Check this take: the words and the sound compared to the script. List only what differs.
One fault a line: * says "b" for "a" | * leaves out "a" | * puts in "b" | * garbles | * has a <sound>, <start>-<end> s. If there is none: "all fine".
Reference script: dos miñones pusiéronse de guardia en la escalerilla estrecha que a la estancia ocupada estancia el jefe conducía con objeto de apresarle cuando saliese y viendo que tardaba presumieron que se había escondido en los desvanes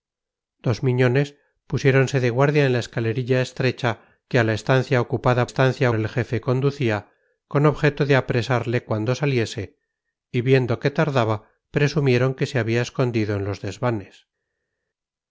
all fine